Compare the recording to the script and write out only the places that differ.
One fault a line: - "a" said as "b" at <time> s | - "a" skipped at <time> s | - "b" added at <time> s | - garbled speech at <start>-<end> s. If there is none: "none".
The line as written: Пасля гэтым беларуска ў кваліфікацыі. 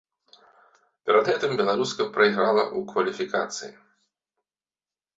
- "Пасля" said as "Перад" at 1.1 s
- "прайграла" added at 2.2 s